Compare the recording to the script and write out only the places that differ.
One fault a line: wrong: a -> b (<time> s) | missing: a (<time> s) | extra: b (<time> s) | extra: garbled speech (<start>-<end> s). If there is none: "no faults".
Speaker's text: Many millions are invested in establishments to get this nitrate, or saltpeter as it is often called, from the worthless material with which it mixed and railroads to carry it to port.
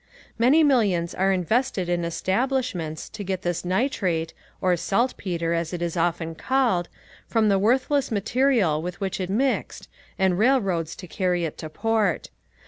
no faults